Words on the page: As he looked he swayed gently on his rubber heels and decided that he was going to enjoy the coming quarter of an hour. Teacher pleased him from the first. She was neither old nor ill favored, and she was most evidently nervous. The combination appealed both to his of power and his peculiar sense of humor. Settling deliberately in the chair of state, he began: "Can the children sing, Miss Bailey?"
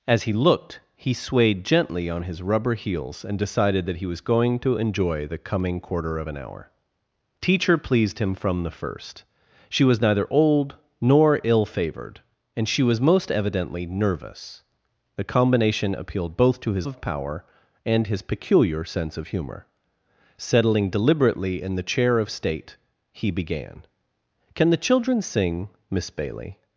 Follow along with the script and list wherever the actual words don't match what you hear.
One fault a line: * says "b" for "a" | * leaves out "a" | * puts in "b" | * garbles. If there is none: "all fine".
all fine